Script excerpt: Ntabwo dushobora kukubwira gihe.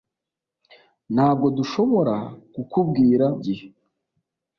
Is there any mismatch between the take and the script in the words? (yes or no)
no